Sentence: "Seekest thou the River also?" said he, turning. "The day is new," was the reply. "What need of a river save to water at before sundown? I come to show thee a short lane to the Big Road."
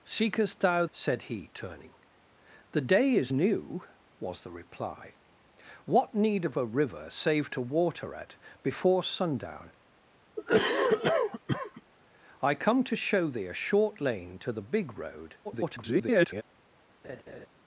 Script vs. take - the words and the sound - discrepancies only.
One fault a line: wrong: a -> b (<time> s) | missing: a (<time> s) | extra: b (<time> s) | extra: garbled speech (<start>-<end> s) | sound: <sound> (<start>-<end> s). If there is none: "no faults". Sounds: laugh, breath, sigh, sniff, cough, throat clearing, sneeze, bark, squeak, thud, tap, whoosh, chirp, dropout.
missing: the River also (0.8 s)
sound: cough (10.4-11.8 s)
extra: garbled speech (15.4-16.4 s)
sound: laugh (17.0-17.5 s)